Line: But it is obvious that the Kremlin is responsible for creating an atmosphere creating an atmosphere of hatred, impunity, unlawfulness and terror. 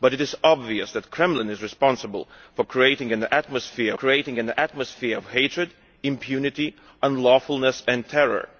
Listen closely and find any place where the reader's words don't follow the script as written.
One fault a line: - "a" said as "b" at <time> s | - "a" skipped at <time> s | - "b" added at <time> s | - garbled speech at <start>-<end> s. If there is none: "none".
none